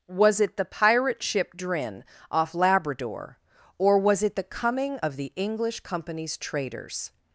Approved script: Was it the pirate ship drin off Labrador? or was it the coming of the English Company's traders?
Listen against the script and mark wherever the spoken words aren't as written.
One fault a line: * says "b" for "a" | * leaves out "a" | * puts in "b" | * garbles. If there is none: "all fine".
all fine